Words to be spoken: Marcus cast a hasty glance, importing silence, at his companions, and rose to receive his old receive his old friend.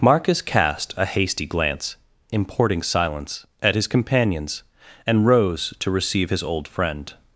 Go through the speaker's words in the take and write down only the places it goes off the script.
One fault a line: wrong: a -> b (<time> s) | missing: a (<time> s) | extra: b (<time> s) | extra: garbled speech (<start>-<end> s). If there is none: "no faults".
missing: receive his old (6.7 s)